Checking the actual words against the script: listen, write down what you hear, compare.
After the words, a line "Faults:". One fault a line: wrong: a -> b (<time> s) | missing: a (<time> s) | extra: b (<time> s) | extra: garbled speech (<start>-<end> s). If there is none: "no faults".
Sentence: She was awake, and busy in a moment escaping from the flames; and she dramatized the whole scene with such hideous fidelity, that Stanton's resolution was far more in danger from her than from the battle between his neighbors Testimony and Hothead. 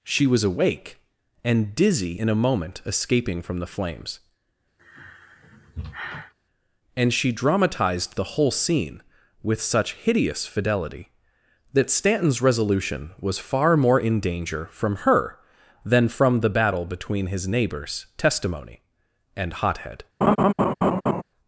She was awake, and dizzy in a moment escaping from the flames; and she dramatized the whole scene with such hideous fidelity, that Stanton's resolution was far more in danger from her than from the battle between his neighbors Testimony and Hothead.
Faults:
wrong: busy -> dizzy (1.8 s)